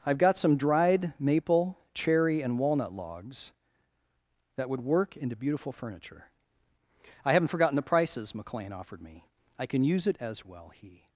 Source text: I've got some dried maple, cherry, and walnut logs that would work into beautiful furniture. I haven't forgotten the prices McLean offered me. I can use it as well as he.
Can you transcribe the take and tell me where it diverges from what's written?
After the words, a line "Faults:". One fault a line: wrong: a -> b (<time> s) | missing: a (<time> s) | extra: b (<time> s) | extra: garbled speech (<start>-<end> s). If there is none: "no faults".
I've got some dried maple, cherry, and walnut logs that would work into beautiful furniture. I haven't forgotten the prices McLean offered me. I can use it as well he.
Faults:
missing: as (10.7 s)